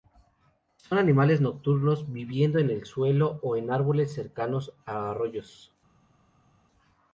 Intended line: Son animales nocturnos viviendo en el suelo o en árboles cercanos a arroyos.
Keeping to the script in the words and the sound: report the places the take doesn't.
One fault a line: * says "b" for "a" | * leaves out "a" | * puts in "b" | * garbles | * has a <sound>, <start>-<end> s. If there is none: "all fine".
all fine